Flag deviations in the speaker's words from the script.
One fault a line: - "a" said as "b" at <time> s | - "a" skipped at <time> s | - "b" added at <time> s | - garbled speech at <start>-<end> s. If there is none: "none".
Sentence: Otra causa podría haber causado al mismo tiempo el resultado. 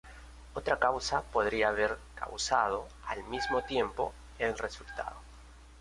none